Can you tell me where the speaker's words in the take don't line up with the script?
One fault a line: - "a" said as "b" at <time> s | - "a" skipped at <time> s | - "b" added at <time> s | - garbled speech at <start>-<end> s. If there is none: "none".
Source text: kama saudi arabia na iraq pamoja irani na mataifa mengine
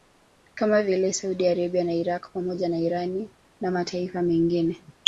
- "vile" added at 0.8 s
- "na" added at 2.7 s